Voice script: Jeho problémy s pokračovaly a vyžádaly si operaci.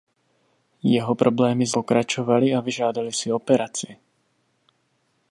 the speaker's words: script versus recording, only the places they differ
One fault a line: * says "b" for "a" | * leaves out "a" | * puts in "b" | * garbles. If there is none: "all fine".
all fine